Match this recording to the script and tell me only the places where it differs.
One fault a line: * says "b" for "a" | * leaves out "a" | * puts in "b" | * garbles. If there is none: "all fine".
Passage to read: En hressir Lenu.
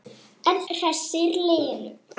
all fine